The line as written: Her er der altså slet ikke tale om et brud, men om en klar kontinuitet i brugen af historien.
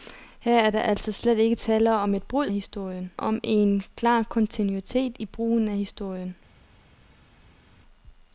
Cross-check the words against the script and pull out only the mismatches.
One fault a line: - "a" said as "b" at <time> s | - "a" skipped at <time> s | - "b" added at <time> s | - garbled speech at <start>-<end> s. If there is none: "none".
- "men" said as "historien" at 2.5 s